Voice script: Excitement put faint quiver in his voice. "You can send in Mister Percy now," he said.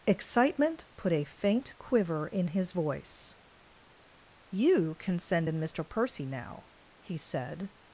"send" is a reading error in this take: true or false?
false